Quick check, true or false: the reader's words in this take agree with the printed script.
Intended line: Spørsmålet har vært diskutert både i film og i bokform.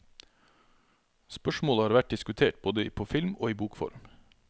false